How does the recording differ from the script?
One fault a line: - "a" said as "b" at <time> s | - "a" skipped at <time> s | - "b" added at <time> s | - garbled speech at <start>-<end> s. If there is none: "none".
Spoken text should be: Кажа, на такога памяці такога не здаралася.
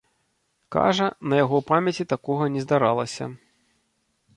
- "такога" said as "яго" at 1.4 s